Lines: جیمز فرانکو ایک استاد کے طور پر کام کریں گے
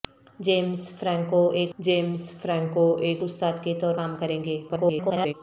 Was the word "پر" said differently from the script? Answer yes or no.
yes